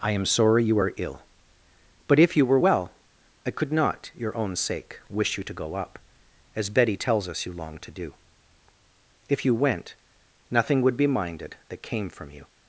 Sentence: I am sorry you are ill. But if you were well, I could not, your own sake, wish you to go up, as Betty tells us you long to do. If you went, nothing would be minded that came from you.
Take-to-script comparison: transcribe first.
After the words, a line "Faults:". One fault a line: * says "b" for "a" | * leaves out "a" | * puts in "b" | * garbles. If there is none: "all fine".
I am sorry you are ill. But if you were well, I could not, your own sake, wish you to go up, as Betty tells us you long to do. If you went, nothing would be minded that came from you.
Faults:
all fine